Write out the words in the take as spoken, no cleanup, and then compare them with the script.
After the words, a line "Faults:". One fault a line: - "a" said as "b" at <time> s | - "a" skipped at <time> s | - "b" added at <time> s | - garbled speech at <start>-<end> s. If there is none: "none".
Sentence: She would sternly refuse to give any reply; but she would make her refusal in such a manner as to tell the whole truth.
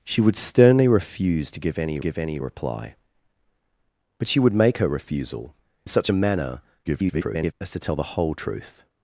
She would sternly refuse to give any give any reply; but she would make her refusal such a manner [garbled] as to tell the whole truth.
Faults:
- "give any" added at 2.0 s
- "in" skipped at 5.5 s
- garbled speech at 6.9-7.5 s